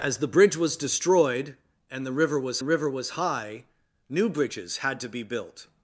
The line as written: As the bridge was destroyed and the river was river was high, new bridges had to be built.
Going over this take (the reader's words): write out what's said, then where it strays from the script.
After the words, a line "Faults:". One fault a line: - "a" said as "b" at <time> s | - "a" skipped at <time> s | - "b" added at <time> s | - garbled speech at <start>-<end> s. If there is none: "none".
As the bridge was destroyed and the river was river was high, new bridges had to be built.
Faults:
none